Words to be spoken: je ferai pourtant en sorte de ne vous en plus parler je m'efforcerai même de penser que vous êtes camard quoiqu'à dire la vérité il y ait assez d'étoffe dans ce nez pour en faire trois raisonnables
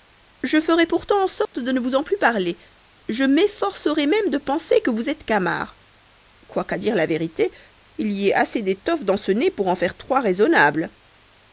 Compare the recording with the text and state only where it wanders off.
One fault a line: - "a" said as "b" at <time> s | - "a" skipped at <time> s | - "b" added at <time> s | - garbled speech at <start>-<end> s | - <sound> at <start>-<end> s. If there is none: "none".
- dropout at 1.5-1.5 s